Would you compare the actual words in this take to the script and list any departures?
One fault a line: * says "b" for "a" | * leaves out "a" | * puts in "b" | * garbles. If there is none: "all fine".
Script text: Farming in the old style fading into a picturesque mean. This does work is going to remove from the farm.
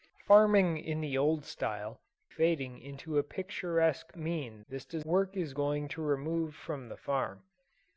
all fine